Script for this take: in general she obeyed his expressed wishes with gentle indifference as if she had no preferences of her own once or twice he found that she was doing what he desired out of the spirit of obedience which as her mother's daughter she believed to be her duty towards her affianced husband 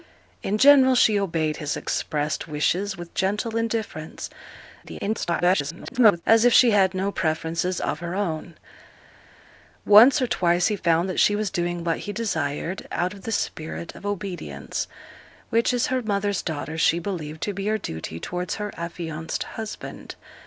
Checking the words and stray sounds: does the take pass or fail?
fail